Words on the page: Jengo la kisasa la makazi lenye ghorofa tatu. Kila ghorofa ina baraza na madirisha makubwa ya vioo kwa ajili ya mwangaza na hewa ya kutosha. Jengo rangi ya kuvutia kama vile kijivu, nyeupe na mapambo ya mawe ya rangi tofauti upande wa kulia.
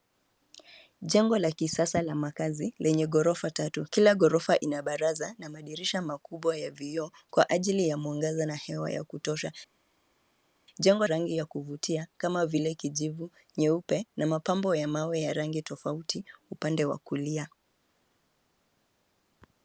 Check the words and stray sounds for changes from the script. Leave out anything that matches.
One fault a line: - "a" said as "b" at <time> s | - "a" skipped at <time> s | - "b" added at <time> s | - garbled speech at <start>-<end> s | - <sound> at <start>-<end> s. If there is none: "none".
none